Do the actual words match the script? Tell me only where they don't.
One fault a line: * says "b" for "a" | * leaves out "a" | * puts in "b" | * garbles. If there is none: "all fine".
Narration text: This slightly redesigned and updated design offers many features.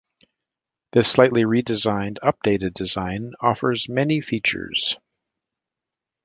* leaves out "and"